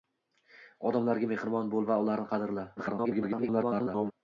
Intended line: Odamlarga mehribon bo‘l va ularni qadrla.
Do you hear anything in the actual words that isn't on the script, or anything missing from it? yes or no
yes